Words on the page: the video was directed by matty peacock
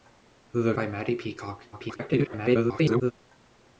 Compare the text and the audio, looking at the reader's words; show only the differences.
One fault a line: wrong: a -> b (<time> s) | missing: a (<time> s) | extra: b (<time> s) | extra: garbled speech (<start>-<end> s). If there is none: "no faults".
missing: video was directed (0.7 s)
extra: garbled speech (1.7-3.1 s)